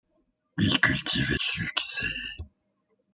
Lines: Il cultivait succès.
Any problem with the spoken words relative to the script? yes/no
no